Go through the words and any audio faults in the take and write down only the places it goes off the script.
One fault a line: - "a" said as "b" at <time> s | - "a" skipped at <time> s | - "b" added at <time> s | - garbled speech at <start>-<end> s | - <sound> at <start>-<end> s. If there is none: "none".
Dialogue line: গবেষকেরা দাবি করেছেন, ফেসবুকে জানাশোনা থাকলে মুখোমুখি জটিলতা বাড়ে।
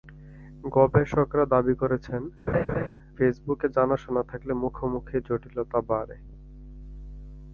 - laugh at 2.5-2.9 s